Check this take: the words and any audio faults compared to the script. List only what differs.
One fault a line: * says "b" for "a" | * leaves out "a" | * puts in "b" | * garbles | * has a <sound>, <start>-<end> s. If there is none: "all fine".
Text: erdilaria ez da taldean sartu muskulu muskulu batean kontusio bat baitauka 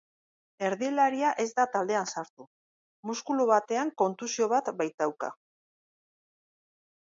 * leaves out "muskulu"